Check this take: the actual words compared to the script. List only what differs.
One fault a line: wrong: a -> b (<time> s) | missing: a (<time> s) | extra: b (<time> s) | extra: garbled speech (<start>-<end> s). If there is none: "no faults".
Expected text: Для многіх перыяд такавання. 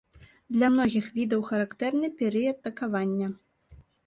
extra: відаў характэрны (1.2 s)